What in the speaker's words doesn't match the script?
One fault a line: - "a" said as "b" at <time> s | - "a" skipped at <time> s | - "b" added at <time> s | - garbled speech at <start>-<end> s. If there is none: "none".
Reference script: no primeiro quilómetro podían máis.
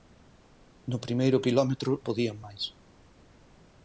none